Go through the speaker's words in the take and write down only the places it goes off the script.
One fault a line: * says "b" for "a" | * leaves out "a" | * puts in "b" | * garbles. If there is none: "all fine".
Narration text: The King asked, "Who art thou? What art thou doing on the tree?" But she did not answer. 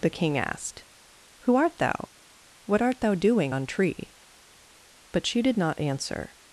* leaves out "the"